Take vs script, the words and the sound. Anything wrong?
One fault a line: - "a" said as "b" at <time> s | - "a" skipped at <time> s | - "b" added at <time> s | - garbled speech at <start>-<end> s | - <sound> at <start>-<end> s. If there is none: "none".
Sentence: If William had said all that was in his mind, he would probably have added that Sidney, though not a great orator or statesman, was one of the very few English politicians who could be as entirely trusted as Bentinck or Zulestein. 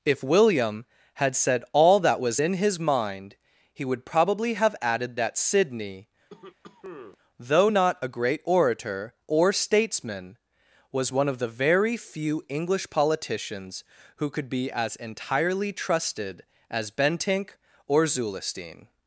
- cough at 6.3-7.2 s